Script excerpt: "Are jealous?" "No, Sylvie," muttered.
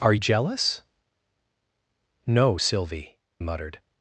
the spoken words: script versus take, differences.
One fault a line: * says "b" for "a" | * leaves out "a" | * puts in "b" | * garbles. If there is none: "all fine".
all fine